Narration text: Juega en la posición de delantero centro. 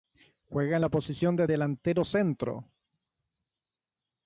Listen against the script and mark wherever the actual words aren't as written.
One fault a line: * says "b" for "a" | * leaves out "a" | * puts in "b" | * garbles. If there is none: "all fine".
all fine